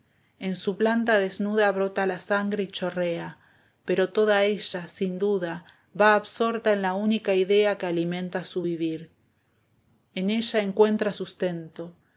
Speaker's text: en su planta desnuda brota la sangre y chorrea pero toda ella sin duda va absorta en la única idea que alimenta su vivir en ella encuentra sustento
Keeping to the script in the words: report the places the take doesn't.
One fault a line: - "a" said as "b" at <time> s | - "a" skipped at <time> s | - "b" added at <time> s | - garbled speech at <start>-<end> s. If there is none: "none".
none